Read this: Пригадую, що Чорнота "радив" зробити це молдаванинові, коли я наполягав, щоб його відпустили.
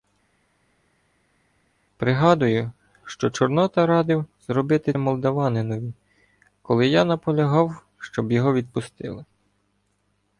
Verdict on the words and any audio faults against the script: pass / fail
fail